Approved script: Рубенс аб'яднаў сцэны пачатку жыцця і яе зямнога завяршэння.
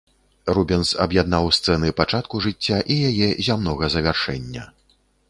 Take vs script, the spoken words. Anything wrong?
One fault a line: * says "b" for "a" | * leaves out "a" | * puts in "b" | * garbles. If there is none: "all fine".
all fine